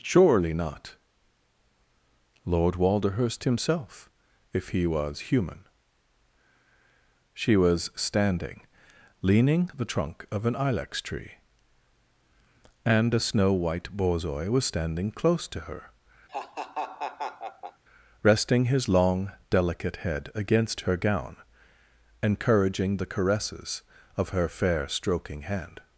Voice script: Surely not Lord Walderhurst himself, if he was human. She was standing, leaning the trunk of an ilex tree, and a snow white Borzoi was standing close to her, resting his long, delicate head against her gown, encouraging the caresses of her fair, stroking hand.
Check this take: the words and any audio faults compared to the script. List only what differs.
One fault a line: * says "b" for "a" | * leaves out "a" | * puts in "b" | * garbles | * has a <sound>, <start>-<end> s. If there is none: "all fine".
* has a laugh, 16.3-17.8 s